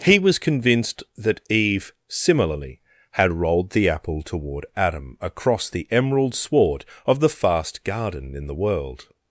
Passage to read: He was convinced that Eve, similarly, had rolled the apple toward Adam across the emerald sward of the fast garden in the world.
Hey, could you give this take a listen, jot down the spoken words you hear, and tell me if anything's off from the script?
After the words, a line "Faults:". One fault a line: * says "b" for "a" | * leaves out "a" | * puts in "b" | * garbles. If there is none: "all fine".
He was convinced that Eve, similarly, had rolled the apple toward Adam across the emerald sward of the fast garden in the world.
Faults:
all fine